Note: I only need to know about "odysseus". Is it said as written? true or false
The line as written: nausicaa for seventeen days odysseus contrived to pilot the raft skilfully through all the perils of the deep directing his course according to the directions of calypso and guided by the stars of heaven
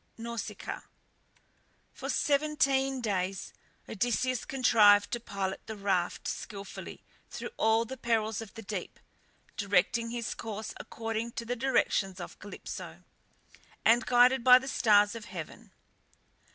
true